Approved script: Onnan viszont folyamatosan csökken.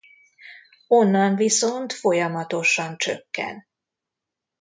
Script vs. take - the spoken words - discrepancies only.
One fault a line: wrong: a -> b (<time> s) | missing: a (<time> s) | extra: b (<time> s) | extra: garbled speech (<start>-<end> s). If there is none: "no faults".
no faults